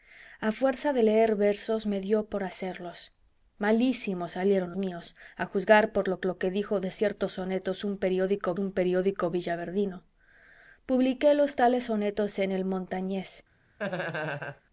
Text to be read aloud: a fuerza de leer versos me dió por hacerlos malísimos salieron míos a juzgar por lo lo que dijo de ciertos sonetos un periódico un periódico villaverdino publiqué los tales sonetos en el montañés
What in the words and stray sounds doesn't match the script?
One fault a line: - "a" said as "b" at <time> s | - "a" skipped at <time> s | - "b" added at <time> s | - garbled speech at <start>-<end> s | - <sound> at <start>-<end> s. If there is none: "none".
- laugh at 13.8-14.6 s